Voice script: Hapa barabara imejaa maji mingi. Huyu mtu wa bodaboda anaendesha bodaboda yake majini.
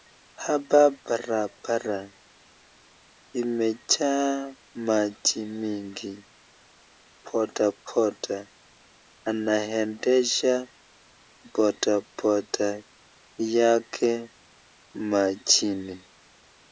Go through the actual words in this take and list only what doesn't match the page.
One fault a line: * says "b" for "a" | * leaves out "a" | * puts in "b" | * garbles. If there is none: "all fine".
* leaves out "Huyu mtu wa"